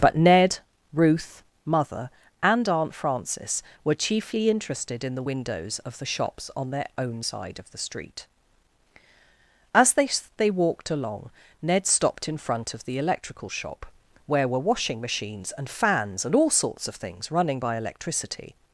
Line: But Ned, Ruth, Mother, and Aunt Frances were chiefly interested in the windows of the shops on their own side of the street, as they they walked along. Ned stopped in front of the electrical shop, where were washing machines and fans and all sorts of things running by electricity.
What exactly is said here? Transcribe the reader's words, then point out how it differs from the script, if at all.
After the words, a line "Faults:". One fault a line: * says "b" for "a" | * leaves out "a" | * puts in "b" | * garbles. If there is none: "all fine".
But Ned, Ruth, Mother, and Aunt Frances were chiefly interested in the windows of the shops on their own side of the street, as they they walked along. Ned stopped in front of the electrical shop, where were washing machines and fans and all sorts of things running by electricity.
Faults:
all fine